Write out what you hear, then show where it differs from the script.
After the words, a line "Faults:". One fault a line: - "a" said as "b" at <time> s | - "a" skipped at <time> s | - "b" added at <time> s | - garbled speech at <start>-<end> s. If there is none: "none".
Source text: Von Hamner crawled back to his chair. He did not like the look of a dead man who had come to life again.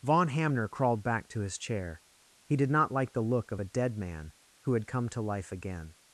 Von Hamner crawled back to his chair. He did not like the look of a dead man who had come to life again.
Faults:
none